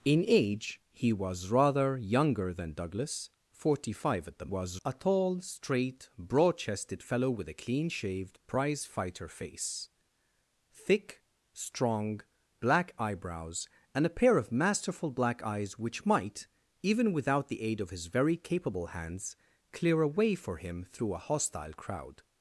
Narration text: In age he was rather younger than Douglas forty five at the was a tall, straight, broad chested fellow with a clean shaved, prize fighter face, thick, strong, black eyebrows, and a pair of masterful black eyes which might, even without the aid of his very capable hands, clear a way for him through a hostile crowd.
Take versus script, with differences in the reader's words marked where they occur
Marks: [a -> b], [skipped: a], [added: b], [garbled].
In age he was rather younger than Douglas forty five at the was a tall, straight, broad chested fellow with a clean shaved, prize fighter face, thick, strong, black eyebrows, and a pair of masterful black eyes which might, even without the aid of his very capable hands, clear a way for him through a hostile crowd.